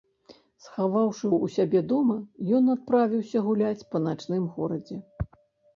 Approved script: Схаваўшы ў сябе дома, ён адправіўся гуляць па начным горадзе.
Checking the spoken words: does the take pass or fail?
pass